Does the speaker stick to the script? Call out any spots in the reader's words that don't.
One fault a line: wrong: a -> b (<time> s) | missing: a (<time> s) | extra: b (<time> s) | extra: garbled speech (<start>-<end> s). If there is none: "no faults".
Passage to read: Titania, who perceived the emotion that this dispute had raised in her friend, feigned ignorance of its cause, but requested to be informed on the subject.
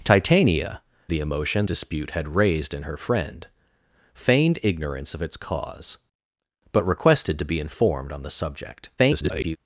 missing: who perceived (0.8 s)
missing: that this (1.6 s)
extra: garbled speech (9.0-9.6 s)